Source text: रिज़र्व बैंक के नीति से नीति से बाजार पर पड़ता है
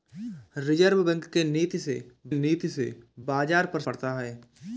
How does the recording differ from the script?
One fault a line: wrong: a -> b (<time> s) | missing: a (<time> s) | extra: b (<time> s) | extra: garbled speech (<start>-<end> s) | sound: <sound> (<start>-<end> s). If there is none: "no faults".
no faults